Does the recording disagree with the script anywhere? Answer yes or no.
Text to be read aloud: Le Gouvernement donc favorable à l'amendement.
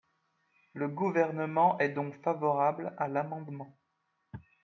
yes